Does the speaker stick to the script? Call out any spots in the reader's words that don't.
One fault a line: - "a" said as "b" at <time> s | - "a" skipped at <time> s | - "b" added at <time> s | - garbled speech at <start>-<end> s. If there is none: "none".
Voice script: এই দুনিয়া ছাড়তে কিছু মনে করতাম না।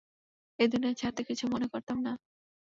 none